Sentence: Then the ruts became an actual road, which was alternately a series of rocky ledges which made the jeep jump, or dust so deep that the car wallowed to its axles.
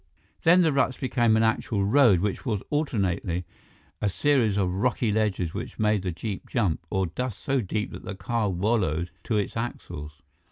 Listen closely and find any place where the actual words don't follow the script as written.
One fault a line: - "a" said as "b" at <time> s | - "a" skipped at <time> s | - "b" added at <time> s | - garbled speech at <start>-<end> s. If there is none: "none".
none